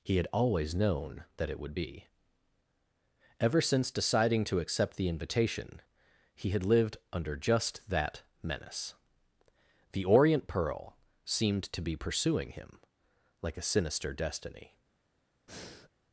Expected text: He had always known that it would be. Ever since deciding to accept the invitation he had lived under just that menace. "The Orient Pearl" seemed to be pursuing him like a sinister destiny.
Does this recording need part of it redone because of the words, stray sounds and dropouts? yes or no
yes